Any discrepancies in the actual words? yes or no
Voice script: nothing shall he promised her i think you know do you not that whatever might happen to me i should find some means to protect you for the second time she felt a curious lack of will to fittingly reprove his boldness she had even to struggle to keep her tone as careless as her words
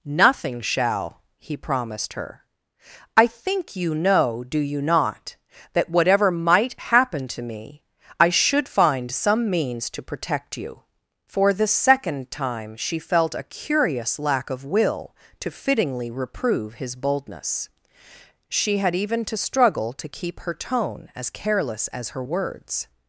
no